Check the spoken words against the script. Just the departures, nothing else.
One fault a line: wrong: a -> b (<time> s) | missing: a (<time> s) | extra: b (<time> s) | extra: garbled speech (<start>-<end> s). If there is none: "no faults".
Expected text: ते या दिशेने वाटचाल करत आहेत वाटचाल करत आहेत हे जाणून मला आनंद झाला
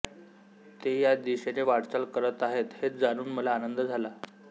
missing: वाटचाल करत आहेत (2.7 s)